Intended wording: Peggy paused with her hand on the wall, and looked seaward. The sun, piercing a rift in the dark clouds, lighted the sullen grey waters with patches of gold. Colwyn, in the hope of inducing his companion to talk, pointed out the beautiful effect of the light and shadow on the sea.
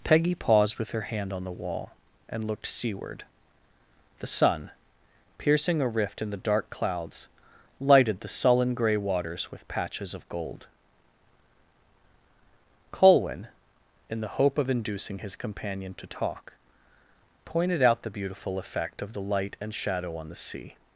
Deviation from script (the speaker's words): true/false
false